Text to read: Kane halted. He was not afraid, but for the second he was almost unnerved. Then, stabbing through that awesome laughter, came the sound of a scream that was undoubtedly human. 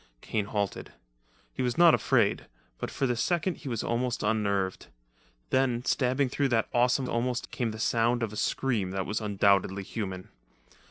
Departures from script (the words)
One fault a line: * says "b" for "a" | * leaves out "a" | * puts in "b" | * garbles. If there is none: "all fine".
* says "almost" for "laughter"